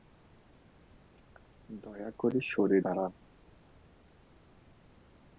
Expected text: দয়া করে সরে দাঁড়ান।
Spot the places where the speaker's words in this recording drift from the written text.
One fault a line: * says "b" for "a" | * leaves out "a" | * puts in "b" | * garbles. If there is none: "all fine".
all fine